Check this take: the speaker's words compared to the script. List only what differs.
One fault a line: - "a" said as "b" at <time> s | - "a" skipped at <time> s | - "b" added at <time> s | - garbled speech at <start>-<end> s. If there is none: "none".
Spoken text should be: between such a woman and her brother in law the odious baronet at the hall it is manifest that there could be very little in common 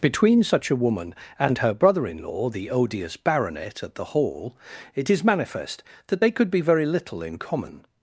- "there" said as "they" at 6.2 s